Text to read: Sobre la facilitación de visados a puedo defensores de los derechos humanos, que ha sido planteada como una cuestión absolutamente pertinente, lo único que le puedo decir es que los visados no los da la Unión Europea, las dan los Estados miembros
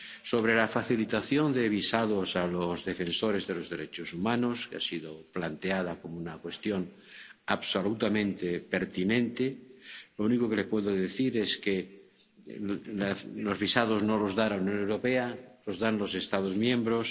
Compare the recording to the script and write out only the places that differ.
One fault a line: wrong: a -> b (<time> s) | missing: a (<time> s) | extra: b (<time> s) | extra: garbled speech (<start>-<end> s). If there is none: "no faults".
wrong: puedo -> los (2.5 s)
wrong: las -> los (15.7 s)